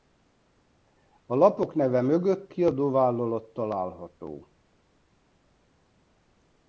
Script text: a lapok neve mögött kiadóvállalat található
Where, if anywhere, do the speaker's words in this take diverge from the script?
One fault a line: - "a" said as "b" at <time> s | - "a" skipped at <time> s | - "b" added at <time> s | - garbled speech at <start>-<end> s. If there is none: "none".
none